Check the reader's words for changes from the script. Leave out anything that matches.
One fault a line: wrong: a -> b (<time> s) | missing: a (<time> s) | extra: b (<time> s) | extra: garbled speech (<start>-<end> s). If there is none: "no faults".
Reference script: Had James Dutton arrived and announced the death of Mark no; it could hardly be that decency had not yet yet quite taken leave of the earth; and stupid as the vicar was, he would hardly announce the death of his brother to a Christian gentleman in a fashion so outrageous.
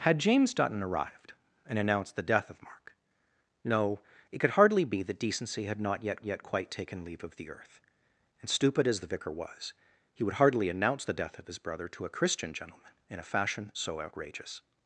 no faults